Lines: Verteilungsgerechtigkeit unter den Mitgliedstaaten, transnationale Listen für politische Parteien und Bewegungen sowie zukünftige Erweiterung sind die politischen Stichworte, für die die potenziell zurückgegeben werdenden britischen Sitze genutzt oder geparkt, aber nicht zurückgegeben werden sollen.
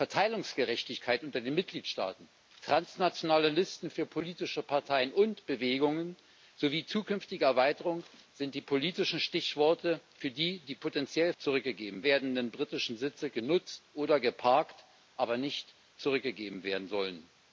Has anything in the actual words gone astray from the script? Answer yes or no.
no